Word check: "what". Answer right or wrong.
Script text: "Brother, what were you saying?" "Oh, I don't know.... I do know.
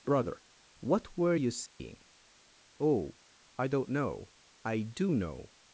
right